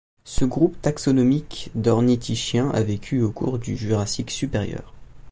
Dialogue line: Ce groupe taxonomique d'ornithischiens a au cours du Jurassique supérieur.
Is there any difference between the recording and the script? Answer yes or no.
yes